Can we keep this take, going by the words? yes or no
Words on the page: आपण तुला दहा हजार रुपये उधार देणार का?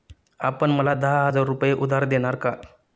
no